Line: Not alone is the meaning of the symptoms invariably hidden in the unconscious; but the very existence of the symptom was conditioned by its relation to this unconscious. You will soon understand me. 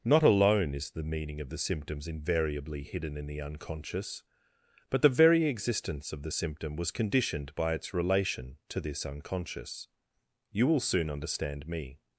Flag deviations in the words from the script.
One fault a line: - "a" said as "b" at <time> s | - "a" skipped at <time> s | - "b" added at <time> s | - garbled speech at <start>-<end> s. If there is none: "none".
none